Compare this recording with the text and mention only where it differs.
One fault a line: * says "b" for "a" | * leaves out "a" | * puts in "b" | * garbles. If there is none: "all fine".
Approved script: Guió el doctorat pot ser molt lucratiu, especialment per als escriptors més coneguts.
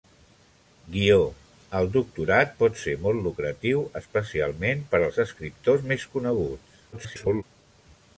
* garbles